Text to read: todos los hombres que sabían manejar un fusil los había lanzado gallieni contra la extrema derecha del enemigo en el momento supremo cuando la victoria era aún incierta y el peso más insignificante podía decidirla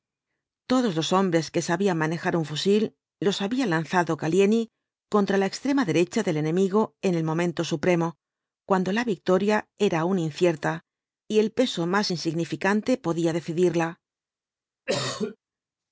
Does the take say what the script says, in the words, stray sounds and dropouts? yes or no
no